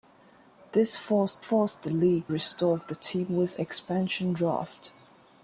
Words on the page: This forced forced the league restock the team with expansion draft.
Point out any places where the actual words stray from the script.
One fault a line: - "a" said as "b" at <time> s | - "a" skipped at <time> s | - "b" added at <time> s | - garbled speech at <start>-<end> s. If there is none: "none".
none